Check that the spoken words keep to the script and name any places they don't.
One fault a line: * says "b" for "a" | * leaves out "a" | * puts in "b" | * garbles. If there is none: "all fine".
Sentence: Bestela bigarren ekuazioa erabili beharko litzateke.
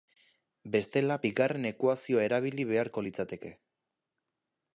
all fine